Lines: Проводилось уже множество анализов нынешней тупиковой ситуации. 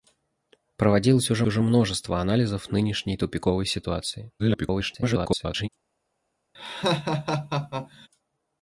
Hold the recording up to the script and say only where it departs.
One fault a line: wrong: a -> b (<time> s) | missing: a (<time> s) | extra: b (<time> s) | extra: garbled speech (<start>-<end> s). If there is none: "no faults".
extra: уже (1.4 s)
extra: garbled speech (4.4-5.7 s)